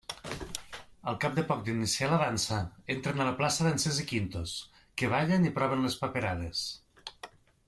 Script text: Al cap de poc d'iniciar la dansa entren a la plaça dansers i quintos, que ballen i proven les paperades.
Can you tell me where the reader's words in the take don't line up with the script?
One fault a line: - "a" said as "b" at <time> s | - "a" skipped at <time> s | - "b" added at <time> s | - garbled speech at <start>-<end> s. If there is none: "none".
none